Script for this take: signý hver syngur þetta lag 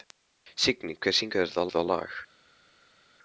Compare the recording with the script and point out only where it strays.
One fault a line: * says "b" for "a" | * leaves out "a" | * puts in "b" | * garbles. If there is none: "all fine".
* puts in "þetta"